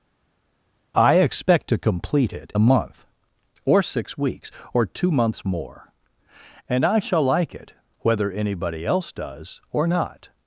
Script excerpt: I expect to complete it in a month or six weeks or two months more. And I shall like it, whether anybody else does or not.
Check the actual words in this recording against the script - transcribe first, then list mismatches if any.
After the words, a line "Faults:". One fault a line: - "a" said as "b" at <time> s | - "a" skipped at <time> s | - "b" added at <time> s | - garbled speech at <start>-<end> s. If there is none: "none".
I expect to complete it a month or six weeks or two months more. And I shall like it, whether anybody else does or not.
Faults:
- "in" skipped at 2.5 s